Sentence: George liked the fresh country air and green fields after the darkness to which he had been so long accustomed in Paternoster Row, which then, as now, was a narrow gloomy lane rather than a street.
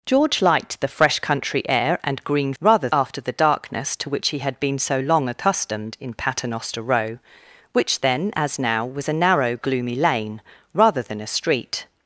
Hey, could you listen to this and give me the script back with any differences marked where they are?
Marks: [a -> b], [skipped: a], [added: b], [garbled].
George liked the fresh country air and green [fields -> rather] after the darkness to which he had been so long accustomed in Paternoster Row, which then, as now, was a narrow gloomy lane rather than a street.